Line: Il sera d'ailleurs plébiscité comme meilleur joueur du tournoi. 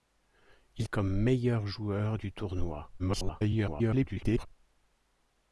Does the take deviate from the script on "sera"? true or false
true